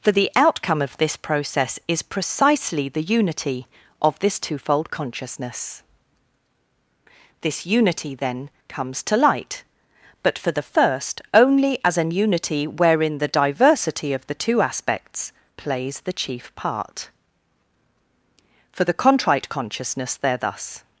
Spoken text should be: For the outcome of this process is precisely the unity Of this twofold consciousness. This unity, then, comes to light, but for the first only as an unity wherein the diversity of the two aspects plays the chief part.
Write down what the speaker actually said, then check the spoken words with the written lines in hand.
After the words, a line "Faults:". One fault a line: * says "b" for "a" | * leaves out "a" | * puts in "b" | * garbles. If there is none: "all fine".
For the outcome of this process is precisely the unity Of this twofold consciousness. This unity, then, comes to light, but for the first only as an unity wherein the diversity of the two aspects plays the chief part. For the Contrite Consciousness there thus
Faults:
* puts in "For the Contrite Consciousness there thus"